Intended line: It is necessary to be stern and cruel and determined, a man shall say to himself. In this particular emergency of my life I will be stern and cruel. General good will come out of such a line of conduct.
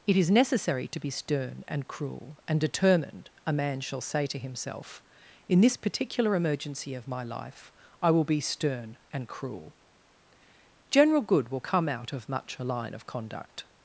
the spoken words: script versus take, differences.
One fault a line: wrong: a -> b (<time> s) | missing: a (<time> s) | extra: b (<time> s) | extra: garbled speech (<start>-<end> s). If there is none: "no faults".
wrong: such -> much (12.3 s)